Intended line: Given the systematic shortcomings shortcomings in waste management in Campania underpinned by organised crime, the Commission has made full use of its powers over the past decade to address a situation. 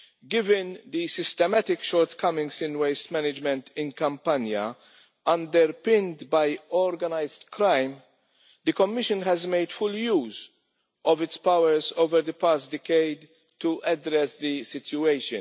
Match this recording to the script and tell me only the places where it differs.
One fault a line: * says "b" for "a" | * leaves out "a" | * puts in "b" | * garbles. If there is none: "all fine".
* leaves out "shortcomings"
* says "the" for "a"